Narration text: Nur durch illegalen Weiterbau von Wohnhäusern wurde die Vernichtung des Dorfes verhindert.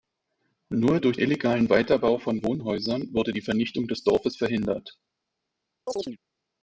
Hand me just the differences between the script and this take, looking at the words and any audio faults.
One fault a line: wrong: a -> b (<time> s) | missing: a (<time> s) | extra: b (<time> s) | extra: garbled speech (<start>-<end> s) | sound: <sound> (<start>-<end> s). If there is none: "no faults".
sound: chirp (5.9-6.2 s)